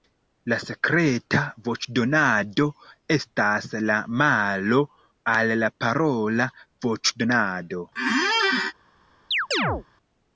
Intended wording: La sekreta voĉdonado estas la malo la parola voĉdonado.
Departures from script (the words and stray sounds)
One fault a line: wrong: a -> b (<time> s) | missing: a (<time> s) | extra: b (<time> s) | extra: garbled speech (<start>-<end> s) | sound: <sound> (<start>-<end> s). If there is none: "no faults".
extra: al (5.3 s)
sound: squeak (8.0-8.7 s)
sound: chirp (9.3-9.8 s)